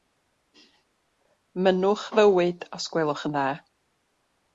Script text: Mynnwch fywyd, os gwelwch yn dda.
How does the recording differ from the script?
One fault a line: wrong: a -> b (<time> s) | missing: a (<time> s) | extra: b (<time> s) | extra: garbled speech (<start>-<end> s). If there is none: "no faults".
no faults